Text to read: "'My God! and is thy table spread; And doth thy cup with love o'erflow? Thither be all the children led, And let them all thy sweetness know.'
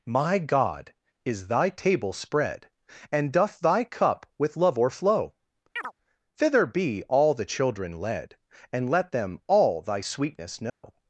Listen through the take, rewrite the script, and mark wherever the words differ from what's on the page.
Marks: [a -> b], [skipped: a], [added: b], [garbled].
"'My God! [skipped: and] is thy table spread; And doth thy cup with love o'erflow? Thither be all the children led, And let them all thy sweetness know.'